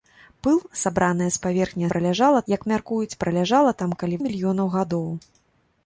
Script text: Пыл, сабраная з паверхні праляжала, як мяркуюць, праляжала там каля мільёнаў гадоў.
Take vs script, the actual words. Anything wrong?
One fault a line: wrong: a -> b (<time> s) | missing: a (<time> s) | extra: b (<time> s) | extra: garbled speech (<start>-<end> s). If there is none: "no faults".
no faults